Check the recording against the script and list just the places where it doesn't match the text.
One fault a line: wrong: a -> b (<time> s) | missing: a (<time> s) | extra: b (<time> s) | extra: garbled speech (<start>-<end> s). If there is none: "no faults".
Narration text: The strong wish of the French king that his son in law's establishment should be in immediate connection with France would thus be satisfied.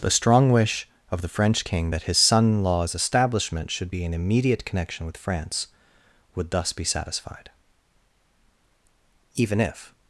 extra: Even if (9.3 s)